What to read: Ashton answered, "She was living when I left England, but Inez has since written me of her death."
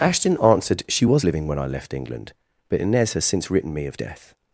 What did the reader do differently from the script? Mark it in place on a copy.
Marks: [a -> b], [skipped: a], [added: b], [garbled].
Ashton answered, "She was living when I left England, but Inez has since written me of [skipped: her] death."